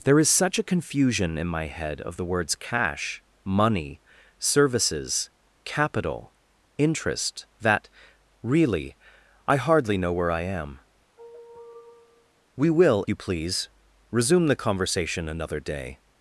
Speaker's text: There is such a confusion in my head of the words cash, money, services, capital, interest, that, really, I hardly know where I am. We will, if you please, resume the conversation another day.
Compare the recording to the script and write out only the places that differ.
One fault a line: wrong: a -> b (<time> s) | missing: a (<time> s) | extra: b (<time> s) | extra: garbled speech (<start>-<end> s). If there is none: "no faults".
missing: if (13.0 s)